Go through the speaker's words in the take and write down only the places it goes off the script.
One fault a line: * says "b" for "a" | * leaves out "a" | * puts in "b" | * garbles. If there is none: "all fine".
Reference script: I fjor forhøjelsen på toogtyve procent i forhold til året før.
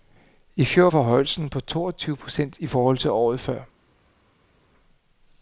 all fine